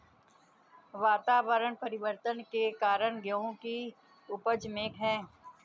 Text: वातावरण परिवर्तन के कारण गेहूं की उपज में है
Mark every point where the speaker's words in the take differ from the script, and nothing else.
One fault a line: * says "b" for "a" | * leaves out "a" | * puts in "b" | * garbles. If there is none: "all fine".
all fine